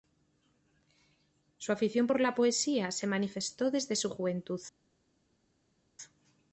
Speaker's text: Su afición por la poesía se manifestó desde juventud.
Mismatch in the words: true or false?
true